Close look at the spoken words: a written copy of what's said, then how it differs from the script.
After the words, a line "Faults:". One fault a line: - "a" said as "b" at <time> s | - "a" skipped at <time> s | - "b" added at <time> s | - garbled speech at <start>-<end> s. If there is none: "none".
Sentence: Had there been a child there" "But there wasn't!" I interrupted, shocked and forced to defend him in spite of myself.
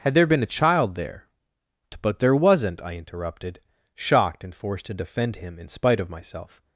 Had there been a child there" "But there wasn't!" I interrupted, shocked and forced to defend him in spite of myself.
Faults:
none